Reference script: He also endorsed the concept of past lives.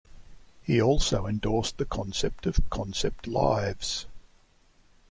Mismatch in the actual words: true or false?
true